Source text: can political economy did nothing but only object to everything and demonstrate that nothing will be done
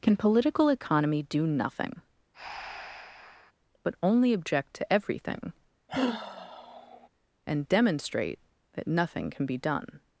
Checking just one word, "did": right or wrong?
wrong